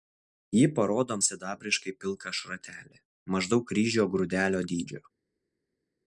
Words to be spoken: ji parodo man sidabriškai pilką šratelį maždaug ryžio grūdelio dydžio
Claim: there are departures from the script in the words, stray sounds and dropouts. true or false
true